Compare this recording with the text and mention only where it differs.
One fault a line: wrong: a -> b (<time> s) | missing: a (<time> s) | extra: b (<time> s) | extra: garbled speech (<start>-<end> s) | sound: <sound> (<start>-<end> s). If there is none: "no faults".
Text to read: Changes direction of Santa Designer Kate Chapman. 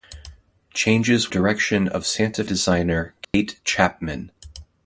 sound: dropout (3.2-3.3 s)